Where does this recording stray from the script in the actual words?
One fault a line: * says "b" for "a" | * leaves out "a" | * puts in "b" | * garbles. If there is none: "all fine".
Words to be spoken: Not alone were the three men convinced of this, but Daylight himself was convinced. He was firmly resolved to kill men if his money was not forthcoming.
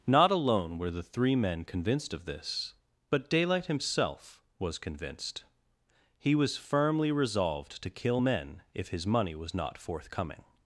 all fine